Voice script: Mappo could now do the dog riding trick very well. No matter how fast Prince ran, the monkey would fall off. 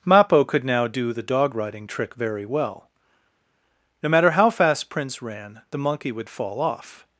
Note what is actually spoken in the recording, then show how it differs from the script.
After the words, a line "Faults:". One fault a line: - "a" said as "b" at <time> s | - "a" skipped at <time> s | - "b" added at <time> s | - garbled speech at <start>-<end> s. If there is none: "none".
Mappo could now do the dog riding trick very well. No matter how fast Prince ran, the monkey would fall off.
Faults:
none